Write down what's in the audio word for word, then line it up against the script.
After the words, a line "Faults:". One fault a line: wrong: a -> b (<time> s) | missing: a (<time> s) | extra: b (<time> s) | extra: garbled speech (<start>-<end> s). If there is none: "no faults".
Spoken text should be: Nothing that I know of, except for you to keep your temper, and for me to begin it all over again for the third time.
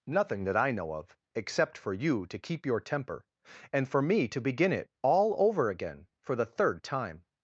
Nothing that I know of, except for you to keep your temper, and for me to begin it all over again for the third time.
Faults:
no faults